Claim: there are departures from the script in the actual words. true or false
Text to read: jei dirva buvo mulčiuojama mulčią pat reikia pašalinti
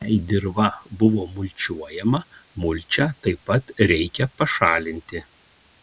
true